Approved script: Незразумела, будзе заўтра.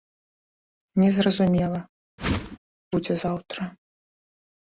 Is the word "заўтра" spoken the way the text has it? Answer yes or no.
yes